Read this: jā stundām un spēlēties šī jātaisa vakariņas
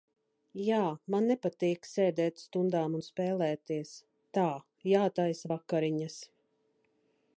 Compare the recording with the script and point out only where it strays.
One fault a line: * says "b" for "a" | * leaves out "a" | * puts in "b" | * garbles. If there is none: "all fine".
* puts in "man nepatīk sēdēt"
* says "tā" for "šī"